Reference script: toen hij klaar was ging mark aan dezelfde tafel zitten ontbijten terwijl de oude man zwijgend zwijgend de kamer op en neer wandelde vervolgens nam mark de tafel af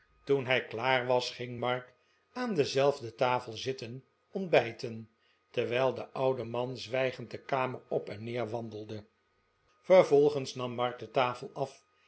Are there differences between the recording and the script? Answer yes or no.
yes